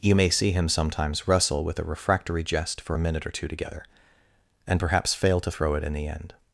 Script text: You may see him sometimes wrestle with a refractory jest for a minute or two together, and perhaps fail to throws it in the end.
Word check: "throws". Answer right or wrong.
wrong